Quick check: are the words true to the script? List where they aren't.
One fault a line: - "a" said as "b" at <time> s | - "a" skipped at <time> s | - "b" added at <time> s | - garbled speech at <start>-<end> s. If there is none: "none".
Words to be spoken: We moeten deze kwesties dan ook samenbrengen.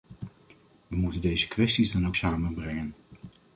none